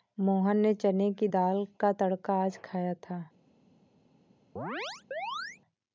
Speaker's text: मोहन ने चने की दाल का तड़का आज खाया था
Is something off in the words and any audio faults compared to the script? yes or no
yes